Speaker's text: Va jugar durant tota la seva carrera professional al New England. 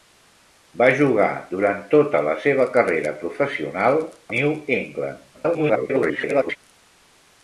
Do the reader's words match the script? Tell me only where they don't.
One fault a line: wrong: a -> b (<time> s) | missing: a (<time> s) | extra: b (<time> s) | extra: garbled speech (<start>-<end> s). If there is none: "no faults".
missing: al (4.0 s)
extra: garbled speech (5.3-6.6 s)